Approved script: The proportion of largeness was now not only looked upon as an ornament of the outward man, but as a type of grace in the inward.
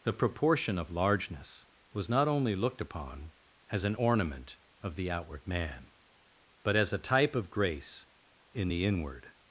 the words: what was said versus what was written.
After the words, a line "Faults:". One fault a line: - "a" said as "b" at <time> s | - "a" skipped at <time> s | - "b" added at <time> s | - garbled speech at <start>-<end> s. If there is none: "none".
The proportion of largeness was not only looked upon as an ornament of the outward man, but as a type of grace in the inward.
Faults:
- "now" skipped at 2.1 s